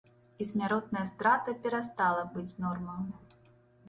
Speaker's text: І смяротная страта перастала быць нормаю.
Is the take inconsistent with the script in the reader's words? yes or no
no